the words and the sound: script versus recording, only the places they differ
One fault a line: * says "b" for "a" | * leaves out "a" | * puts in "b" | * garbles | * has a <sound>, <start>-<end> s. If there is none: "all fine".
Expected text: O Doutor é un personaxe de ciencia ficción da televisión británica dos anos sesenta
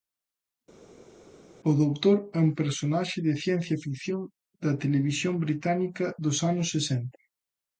all fine